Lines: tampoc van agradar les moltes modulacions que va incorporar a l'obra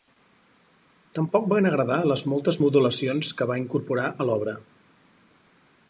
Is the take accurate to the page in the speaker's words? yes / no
yes